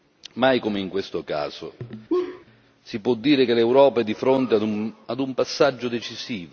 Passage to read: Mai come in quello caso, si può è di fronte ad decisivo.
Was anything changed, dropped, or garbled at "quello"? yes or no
yes